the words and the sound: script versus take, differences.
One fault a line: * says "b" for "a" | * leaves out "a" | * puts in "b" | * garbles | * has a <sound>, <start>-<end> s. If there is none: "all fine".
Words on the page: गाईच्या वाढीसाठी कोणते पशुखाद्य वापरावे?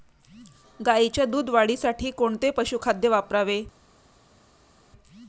* puts in "दूध"